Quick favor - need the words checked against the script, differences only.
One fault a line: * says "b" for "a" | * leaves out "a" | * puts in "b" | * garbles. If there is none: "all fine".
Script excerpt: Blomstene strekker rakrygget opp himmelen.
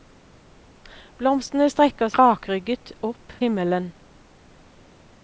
all fine